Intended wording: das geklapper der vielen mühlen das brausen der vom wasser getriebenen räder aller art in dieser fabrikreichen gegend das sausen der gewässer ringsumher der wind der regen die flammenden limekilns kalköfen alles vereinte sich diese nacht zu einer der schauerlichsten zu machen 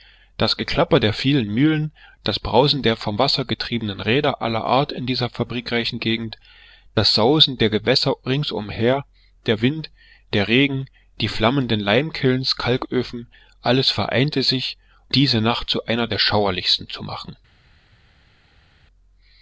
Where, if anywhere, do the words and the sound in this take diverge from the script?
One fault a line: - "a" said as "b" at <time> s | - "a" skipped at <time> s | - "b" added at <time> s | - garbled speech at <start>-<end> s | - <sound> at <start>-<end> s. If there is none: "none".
none